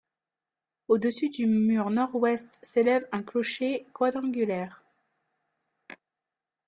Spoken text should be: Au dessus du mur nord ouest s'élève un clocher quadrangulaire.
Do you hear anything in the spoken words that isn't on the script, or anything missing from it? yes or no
no